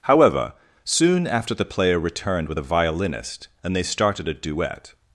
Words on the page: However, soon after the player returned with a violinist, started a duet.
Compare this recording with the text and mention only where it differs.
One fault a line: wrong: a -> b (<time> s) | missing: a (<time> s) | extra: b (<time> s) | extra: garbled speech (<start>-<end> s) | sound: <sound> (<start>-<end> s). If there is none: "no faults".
extra: and they (3.6 s)